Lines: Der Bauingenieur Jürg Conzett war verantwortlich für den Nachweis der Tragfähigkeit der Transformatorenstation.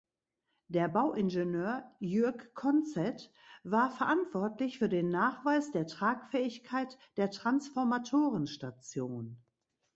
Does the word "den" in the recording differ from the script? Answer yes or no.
no